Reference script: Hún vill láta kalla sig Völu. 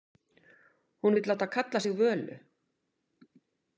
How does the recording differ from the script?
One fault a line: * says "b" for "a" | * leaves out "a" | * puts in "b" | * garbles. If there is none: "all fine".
all fine